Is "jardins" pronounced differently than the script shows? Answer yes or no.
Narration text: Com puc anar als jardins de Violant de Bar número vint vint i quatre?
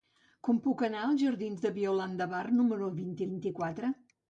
no